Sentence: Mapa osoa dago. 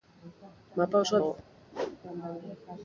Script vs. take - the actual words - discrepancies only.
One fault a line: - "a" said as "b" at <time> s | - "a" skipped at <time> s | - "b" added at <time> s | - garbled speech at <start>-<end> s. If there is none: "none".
none